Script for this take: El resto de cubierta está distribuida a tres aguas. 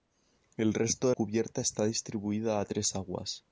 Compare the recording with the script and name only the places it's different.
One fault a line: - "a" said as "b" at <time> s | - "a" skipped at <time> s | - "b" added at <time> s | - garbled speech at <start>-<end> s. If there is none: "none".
none